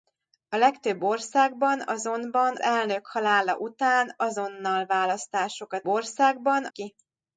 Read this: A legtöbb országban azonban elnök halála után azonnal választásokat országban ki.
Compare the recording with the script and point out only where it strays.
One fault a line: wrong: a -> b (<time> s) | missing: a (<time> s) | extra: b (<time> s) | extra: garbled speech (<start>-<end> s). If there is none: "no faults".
no faults